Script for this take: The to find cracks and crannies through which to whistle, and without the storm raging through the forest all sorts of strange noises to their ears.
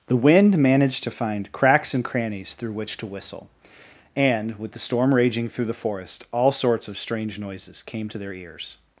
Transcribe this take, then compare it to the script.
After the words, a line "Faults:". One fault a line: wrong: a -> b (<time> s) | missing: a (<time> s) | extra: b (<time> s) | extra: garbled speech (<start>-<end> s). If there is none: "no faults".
The wind managed to find cracks and crannies through which to whistle, and with the storm raging through the forest all sorts of strange noises came to their ears.
Faults:
extra: wind managed (0.1 s)
wrong: without -> with (4.6 s)
extra: came (7.8 s)